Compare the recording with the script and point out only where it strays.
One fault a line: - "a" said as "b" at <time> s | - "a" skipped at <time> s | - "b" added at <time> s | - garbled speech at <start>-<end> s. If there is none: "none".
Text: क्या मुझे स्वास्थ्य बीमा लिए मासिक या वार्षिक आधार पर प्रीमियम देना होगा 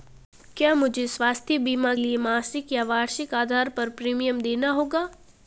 none